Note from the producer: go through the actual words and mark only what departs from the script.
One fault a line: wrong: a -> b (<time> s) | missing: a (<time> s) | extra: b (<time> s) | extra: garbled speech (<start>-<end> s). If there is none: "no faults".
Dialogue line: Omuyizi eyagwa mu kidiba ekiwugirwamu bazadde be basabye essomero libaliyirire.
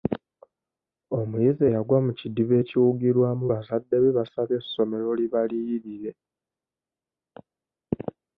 no faults